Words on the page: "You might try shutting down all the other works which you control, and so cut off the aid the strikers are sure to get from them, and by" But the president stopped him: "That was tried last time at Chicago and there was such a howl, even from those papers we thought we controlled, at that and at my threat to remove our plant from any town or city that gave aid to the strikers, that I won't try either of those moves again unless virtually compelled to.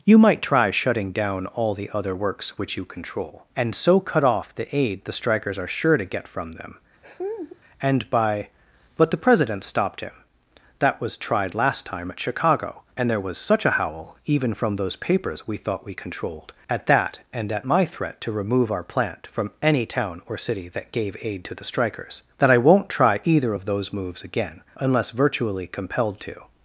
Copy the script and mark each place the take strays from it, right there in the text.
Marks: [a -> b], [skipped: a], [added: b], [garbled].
"You might try shutting down all the other works which you control, and so cut off the aid the strikers are sure to get from them, and by" But the president stopped him: "That was tried last time at Chicago and there was such a howl, even from those papers we thought we controlled, at that and at my threat to remove our plant from any town or city that gave aid to the strikers, that I won't try either of those moves again unless virtually compelled to.